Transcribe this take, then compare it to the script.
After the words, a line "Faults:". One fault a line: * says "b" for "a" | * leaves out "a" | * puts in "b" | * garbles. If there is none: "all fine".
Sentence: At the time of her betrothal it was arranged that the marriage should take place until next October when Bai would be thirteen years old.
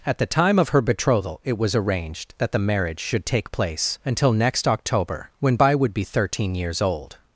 At the time of her betrothal it was arranged that the marriage should take place until next October when Bai would be thirteen years old.
Faults:
all fine